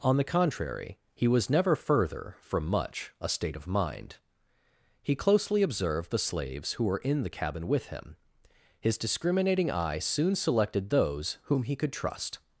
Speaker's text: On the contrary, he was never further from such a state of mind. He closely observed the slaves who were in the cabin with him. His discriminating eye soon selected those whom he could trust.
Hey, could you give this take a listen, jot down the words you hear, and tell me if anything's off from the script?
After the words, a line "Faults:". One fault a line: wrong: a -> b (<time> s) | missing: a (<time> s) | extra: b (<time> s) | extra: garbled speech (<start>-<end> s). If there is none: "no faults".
On the contrary, he was never further from much a state of mind. He closely observed the slaves who were in the cabin with him. His discriminating eye soon selected those whom he could trust.
Faults:
wrong: such -> much (2.6 s)